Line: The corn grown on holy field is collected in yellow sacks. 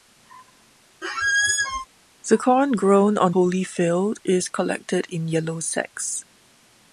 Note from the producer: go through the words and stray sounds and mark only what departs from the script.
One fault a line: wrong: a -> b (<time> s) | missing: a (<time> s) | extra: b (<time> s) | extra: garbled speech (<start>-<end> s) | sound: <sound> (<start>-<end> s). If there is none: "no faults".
sound: squeak (1.0-1.9 s)